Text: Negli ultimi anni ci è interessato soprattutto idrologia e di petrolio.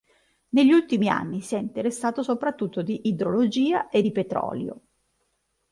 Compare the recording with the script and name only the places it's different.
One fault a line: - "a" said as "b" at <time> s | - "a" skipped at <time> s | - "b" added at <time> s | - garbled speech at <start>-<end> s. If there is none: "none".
- "ci" said as "si" at 1.4 s
- "di" added at 2.8 s